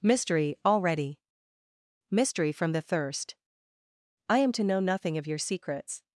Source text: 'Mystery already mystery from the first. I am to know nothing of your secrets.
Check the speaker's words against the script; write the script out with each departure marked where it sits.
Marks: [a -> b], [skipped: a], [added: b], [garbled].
'Mystery already mystery from the [first. -> thirst] I am to know nothing of your secrets.